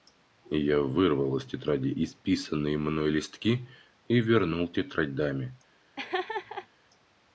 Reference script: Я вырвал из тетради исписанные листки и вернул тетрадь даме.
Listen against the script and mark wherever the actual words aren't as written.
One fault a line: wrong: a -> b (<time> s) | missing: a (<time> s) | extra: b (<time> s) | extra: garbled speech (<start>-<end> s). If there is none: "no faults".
extra: мной (2.8 s)